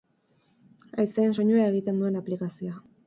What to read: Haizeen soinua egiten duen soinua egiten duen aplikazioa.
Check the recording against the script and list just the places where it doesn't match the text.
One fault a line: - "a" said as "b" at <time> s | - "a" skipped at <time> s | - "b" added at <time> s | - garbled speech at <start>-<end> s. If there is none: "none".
- "soinua egiten duen" skipped at 2.2 s